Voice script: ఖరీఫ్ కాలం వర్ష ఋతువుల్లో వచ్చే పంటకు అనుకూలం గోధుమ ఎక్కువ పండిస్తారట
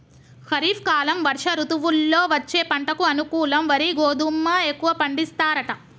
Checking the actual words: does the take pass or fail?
fail